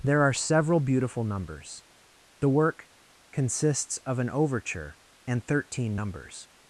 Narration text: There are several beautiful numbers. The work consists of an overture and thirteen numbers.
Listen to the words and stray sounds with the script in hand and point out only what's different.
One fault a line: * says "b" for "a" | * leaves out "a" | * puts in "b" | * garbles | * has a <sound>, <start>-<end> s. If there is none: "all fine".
all fine